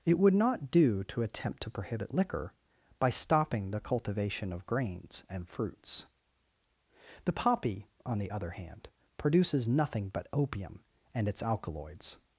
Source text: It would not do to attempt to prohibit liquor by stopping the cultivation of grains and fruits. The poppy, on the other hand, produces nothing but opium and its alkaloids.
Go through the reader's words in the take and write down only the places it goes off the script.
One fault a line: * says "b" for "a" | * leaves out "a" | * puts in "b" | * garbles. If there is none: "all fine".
all fine